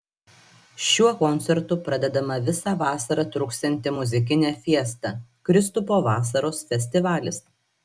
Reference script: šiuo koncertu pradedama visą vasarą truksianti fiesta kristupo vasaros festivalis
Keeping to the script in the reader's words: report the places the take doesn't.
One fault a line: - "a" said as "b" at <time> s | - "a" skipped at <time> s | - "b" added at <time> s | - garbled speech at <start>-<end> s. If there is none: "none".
- "muzikinė" added at 3.9 s